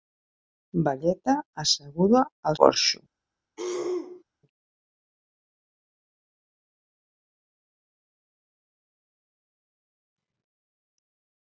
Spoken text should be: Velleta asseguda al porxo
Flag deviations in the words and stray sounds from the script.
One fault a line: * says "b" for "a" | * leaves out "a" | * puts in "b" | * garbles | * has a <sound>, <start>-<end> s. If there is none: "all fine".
* has a throat clearing, 3.6-4.2 s